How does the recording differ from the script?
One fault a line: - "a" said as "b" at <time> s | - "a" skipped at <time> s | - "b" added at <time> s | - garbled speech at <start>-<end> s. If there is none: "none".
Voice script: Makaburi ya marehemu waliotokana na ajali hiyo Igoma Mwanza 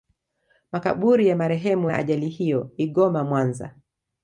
- "waliotokana" skipped at 1.9 s